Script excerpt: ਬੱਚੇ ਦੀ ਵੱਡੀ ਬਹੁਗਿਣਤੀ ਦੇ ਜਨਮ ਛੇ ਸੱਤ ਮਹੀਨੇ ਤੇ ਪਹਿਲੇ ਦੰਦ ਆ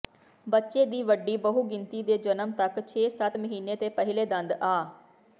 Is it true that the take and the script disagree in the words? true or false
true